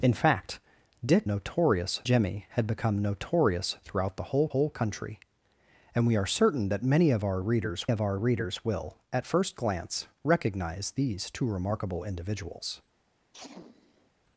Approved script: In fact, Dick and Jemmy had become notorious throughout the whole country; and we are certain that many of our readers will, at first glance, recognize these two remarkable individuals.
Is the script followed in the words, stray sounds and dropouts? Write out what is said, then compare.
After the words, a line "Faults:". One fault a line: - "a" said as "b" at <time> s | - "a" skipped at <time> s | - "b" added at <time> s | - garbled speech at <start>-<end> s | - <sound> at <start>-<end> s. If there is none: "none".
In fact, Dick notorious Jemmy had become notorious throughout the whole whole country; and we are certain that many of our readers of our readers will, at first glance, recognize these two remarkable individuals.
Faults:
- "and" said as "notorious" at 1.2 s
- "whole" added at 4.5 s
- "of our readers" added at 7.9 s
- sneeze at 13.3-14.1 s